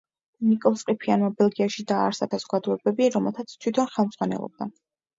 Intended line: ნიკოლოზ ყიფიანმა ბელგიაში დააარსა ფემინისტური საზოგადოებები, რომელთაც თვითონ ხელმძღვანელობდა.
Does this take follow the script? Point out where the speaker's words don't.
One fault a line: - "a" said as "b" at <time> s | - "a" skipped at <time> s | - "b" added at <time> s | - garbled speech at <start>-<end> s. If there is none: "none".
- "ფემინისტური" skipped at 2.3 s